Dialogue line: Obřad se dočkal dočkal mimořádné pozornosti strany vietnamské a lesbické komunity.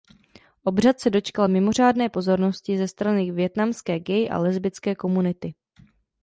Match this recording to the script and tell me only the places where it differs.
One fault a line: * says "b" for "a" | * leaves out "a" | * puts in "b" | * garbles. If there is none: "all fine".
* leaves out "dočkal"
* puts in "ze"
* puts in "gay"